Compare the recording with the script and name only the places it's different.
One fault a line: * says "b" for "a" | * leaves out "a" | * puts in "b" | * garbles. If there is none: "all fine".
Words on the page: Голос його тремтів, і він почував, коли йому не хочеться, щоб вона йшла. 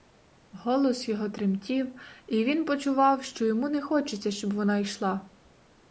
* says "що" for "коли"